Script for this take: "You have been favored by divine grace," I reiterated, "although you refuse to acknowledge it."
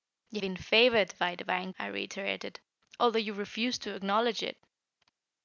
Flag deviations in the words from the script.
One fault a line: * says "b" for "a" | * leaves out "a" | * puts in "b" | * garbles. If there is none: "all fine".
* leaves out "have"
* leaves out "grace"